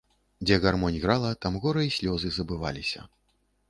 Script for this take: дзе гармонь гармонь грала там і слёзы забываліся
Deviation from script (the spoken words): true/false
true